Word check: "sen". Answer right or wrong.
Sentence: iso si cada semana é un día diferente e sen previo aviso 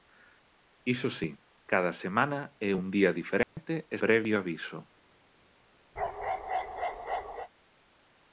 wrong